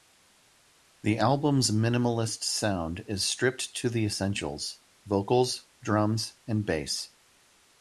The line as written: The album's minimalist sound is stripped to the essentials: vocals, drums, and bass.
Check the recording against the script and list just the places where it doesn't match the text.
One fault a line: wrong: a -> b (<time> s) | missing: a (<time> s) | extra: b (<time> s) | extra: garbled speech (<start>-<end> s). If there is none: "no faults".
no faults